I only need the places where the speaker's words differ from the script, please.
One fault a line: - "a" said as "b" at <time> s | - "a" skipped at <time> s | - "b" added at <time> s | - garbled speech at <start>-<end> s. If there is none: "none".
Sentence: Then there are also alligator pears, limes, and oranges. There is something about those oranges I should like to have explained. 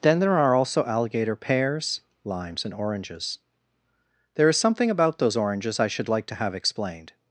none